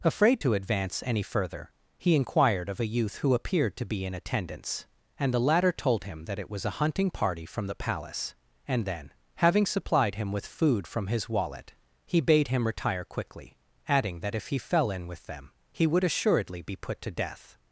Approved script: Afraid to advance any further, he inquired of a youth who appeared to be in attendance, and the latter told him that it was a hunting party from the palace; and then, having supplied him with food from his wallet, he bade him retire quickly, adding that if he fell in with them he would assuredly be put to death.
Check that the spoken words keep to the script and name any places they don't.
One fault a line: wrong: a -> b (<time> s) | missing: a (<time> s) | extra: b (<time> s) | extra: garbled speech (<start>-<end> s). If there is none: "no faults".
no faults